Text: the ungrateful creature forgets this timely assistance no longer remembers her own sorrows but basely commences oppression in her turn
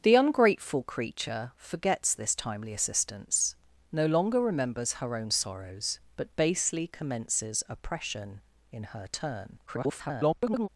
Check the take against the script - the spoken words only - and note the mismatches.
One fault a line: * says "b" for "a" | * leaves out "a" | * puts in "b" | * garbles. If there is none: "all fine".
* garbles